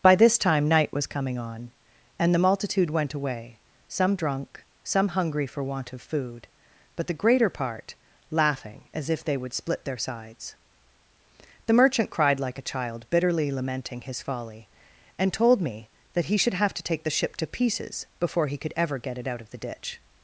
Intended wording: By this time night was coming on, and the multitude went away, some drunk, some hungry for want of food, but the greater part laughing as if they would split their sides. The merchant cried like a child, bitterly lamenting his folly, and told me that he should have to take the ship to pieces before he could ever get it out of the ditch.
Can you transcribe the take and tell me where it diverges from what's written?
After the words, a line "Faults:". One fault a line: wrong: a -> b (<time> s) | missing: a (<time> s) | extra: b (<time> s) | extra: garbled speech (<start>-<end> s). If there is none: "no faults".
By this time night was coming on, and the multitude went away, some drunk, some hungry for want of food, but the greater part laughing as if they would split their sides. The merchant cried like a child, bitterly lamenting his folly, and told me that he should have to take the ship to pieces before he could ever get it out of the ditch.
Faults:
no faults